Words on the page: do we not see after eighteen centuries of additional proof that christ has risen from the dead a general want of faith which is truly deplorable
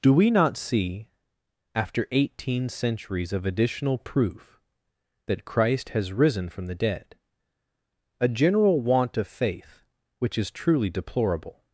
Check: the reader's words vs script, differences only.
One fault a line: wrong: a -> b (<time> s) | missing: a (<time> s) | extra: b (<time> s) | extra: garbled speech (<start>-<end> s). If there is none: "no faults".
no faults